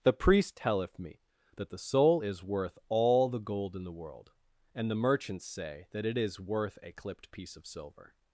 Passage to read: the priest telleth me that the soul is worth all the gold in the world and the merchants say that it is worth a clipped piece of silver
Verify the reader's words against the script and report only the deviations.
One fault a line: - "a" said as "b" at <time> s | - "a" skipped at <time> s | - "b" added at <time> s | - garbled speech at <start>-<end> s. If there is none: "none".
none